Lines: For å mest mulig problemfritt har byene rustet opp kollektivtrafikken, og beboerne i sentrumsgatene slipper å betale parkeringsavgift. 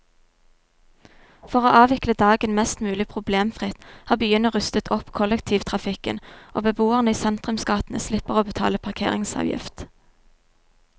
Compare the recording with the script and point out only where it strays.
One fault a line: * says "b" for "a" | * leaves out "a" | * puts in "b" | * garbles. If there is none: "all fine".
* puts in "avvikle dagen"